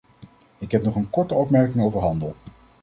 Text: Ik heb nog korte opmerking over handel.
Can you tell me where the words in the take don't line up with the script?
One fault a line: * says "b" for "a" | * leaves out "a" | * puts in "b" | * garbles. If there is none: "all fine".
* puts in "een"